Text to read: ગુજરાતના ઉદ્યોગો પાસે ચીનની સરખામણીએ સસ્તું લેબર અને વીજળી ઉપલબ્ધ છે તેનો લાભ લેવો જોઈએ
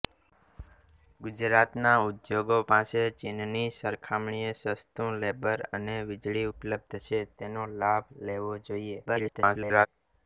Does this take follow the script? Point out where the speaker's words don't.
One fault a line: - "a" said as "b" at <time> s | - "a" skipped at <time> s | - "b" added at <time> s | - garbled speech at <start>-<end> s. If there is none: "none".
- garbled speech at 9.1-9.9 s